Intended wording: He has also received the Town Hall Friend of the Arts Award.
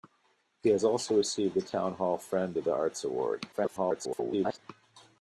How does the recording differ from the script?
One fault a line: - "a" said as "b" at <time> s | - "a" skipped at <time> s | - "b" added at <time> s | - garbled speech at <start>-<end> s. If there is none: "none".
- garbled speech at 3.5-4.6 s